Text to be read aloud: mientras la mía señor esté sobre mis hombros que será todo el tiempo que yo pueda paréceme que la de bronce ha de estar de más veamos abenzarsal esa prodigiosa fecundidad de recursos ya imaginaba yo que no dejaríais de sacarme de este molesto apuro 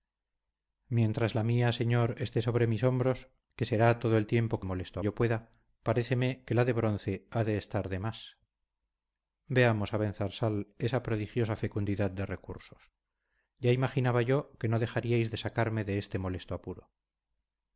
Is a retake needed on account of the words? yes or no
yes